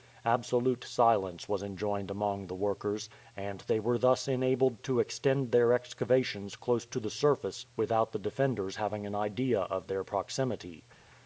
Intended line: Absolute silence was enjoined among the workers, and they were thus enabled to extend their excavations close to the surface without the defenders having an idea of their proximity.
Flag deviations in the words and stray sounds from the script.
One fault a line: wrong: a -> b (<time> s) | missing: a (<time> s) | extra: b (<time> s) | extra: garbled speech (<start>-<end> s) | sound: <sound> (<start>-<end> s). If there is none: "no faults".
no faults